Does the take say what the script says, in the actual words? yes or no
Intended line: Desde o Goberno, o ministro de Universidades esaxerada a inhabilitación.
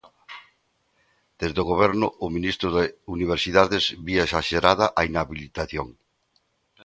no